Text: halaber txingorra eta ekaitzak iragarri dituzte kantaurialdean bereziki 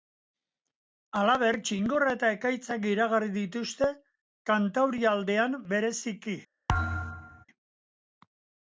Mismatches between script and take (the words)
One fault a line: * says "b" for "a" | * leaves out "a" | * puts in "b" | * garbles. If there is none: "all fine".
all fine